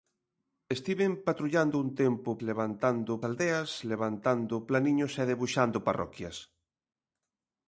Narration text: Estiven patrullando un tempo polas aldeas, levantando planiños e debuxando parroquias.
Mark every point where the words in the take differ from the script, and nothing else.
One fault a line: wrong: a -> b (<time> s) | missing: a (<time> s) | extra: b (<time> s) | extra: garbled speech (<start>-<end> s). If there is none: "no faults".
wrong: polas -> levantando (2.5 s)